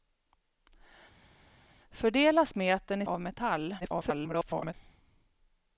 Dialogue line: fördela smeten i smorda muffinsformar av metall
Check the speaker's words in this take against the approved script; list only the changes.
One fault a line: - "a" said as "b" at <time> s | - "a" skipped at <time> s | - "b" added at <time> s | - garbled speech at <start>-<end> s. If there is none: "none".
- "smorda muffinsformar" skipped at 3.1 s
- garbled speech at 3.8-4.7 s